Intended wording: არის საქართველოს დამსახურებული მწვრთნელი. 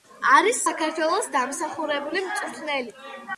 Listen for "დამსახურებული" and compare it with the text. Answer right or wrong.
right